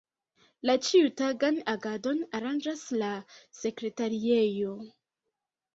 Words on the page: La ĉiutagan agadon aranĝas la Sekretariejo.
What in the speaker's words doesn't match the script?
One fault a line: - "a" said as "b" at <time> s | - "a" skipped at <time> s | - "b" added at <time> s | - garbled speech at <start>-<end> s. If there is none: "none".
none